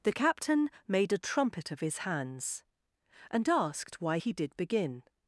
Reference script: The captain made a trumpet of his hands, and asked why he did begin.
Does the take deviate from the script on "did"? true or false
false